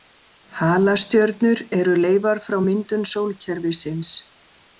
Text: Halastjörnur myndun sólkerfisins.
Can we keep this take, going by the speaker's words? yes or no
no